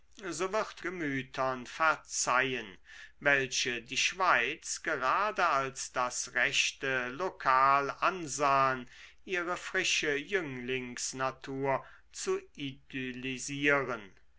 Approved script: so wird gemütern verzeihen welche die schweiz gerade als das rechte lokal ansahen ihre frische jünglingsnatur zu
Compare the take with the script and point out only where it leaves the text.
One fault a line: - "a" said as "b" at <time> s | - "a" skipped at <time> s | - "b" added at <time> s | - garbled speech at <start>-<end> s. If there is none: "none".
none